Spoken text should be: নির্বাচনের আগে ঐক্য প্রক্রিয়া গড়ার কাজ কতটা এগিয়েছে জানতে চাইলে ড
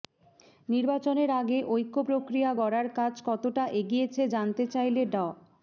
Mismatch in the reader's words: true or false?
false